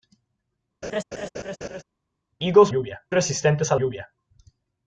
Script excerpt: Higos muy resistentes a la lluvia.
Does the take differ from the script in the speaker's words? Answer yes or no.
yes